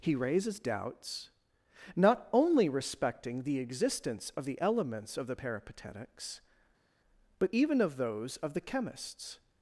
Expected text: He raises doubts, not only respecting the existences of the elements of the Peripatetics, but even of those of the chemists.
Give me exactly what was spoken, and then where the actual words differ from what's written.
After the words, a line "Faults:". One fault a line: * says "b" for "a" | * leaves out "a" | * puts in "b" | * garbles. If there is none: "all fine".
He raises doubts, not only respecting the existence of the elements of the Peripatetics, but even of those of the chemists.
Faults:
* says "existence" for "existences"